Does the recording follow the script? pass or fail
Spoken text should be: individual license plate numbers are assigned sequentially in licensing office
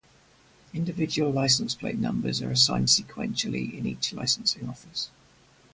fail